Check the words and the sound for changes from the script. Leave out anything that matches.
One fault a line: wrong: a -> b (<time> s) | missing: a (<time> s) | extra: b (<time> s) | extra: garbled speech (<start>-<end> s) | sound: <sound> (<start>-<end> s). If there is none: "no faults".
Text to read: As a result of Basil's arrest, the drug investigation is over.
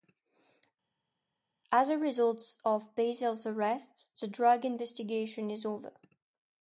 no faults